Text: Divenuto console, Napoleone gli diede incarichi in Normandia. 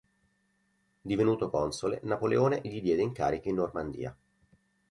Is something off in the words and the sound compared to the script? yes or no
no